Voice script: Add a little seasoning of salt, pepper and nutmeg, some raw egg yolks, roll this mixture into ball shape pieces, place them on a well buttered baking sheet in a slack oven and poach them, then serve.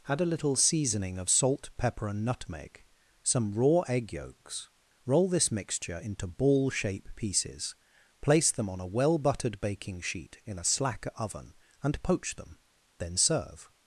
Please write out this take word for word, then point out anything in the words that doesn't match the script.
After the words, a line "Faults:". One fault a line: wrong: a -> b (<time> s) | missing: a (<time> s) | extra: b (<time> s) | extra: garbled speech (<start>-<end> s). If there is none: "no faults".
Add a little seasoning of salt, pepper and nutmeg, some raw egg yolks, roll this mixture into ball shape pieces, place them on a well buttered baking sheet in a slack oven and poach them, then serve.
Faults:
no faults